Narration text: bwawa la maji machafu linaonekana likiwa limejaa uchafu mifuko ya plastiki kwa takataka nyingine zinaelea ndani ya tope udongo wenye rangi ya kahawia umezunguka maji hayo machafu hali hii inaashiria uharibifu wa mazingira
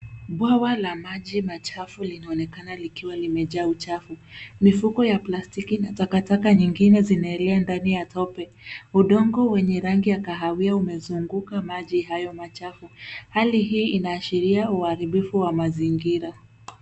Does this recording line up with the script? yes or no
no